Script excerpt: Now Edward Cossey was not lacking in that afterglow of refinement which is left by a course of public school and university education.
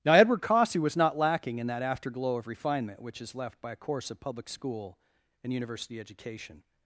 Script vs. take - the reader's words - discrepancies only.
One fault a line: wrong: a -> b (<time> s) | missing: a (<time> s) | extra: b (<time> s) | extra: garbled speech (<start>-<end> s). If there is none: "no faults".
no faults